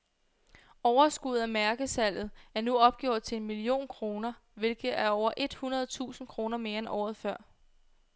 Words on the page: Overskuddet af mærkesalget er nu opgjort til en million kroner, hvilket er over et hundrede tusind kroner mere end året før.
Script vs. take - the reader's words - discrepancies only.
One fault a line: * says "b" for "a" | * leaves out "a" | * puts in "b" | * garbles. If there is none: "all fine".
all fine